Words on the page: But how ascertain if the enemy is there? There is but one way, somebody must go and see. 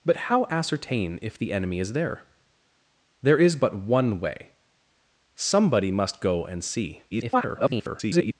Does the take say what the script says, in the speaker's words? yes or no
no